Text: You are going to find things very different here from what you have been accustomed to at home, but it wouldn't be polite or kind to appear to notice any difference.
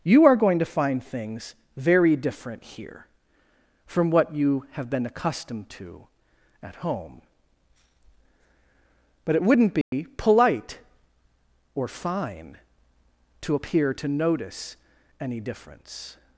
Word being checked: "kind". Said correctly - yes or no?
no